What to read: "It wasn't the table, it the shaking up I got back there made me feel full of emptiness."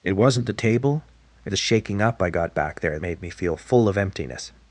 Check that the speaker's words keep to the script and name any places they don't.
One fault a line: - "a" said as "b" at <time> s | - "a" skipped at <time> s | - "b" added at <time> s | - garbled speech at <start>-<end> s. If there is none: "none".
none